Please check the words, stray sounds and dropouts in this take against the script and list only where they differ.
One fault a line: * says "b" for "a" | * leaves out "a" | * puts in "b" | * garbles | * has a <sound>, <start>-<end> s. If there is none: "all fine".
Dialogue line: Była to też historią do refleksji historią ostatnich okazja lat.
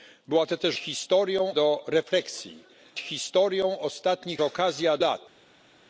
all fine